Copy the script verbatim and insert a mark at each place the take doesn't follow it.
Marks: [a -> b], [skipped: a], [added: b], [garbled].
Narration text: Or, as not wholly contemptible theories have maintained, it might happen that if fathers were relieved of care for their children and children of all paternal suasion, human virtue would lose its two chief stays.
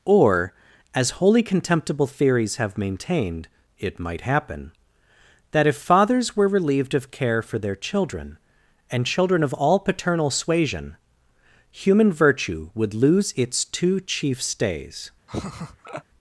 Or, as [skipped: not] wholly contemptible theories have maintained, it might happen that if fathers were relieved of care for their children and children of all paternal suasion, human virtue would lose its two chief stays.